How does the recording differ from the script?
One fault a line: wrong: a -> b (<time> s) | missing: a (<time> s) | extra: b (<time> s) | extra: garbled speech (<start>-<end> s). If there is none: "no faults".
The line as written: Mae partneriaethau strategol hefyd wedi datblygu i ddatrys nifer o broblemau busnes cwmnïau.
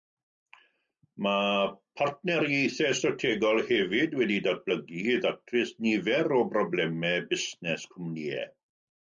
no faults